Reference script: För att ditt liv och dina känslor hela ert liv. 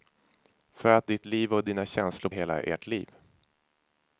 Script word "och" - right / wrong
right